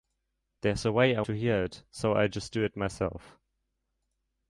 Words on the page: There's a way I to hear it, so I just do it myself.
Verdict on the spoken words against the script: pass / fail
pass